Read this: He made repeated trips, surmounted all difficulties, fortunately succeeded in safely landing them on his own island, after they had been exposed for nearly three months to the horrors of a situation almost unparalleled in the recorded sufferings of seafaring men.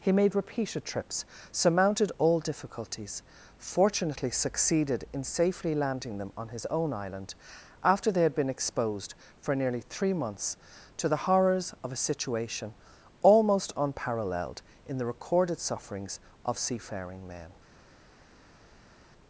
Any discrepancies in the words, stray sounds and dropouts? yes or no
no